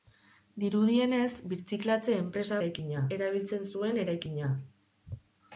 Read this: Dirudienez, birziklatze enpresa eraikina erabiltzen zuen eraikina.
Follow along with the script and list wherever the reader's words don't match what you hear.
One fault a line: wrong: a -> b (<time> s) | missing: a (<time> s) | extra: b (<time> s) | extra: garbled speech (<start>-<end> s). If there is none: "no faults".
no faults